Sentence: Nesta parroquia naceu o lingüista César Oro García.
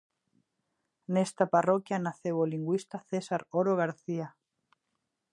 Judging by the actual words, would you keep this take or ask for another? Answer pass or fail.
pass